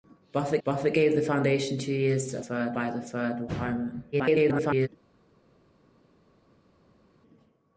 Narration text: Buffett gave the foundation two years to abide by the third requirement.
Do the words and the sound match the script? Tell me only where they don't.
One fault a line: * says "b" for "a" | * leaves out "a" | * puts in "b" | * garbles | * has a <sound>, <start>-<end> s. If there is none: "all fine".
* puts in "buffett"
* says "third" for "abide"
* garbles